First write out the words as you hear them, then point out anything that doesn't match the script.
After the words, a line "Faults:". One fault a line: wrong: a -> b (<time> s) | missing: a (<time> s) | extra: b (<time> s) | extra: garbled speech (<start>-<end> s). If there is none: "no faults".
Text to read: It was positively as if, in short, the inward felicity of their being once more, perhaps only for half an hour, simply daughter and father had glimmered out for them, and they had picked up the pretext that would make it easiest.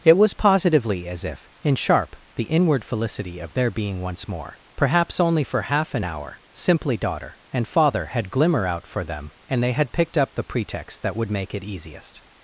It was positively as if, in sharp, the inward felicity of their being once more, perhaps only for half an hour, simply daughter and father had glimmer out for them, and they had picked up the pretext that would make it easiest.
Faults:
wrong: short -> sharp (1.8 s)
wrong: glimmered -> glimmer (8.3 s)